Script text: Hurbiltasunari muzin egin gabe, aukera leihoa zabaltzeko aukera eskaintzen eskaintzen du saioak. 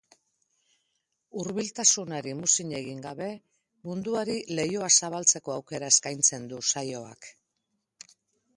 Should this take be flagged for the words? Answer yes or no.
yes